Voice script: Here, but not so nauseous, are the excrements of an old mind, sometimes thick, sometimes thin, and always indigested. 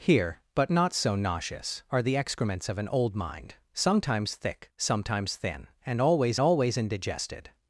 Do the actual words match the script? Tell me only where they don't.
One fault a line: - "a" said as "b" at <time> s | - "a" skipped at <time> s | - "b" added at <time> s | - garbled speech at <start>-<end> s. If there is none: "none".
- "always" added at 6.4 s